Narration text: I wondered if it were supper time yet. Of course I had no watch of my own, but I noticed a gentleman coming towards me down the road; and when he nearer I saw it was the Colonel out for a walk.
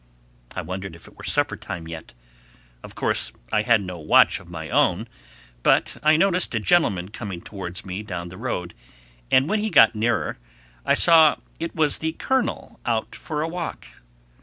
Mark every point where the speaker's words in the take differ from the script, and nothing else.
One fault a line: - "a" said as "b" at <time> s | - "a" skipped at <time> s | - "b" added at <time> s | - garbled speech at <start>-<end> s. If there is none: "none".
- "got" added at 9.7 s